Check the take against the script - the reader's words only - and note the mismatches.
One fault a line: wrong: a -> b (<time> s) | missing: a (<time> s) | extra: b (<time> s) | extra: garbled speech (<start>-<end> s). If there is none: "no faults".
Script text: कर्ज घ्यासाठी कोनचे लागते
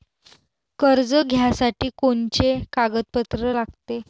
extra: कागदपत्र (2.7 s)